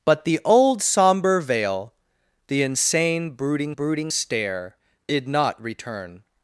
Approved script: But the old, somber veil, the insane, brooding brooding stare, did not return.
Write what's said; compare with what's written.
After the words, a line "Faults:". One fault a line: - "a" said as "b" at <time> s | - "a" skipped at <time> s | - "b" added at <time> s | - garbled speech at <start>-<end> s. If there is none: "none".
But the old, somber veil, the insane, brooding brooding stare, did not return.
Faults:
none